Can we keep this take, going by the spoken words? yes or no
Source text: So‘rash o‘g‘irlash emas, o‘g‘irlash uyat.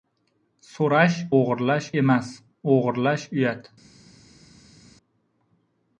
yes